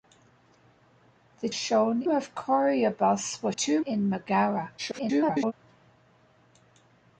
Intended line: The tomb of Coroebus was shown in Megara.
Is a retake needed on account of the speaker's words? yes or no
yes